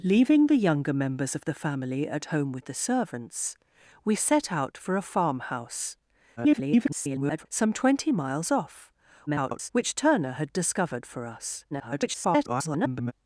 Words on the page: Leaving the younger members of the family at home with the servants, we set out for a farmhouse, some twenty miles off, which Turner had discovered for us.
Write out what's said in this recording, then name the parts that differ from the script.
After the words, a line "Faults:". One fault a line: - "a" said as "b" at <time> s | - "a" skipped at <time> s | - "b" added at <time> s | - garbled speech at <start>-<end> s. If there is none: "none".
Leaving the younger members of the family at home with the servants, we set out for a farmhouse, [garbled] some twenty miles off, [garbled] which Turner had discovered for us. [garbled]
Faults:
- garbled speech at 6.4-7.5 s
- garbled speech at 9.3-9.7 s
- garbled speech at 11.7-13.1 s